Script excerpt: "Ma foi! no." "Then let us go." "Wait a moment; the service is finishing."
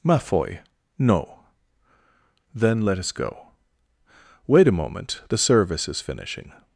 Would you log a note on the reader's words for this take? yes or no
no